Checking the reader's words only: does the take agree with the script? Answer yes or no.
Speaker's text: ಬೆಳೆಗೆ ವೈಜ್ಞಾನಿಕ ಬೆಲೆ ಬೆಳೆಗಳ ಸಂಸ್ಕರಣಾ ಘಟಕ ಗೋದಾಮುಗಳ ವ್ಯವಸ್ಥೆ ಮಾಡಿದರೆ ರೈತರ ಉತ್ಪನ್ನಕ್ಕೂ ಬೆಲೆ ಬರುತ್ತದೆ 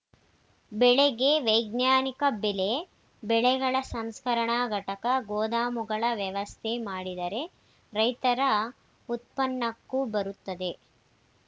no